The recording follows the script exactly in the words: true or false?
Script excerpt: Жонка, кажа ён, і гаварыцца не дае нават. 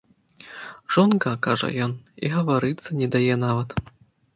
true